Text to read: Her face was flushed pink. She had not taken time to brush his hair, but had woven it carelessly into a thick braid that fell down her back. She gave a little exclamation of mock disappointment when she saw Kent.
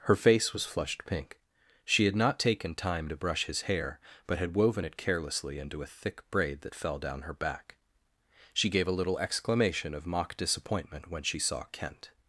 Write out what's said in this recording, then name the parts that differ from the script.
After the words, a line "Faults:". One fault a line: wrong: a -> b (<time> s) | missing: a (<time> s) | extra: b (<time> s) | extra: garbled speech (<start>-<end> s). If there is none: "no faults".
Her face was flushed pink. She had not taken time to brush his hair, but had woven it carelessly into a thick braid that fell down her back. She gave a little exclamation of mock disappointment when she saw Kent.
Faults:
no faults